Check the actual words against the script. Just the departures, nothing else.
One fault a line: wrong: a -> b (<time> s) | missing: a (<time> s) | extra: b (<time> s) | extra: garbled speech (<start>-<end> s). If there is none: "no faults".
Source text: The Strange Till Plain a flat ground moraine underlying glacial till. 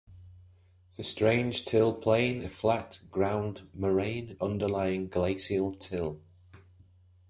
no faults